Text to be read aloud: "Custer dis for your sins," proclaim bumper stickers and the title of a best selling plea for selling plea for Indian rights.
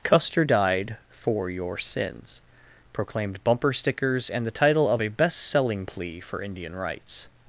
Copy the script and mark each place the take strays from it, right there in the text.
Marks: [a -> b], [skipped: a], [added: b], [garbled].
"Custer [dis -> died] for your sins," [proclaim -> proclaimed] bumper stickers and the title of a best selling plea for [skipped: selling plea for] Indian rights.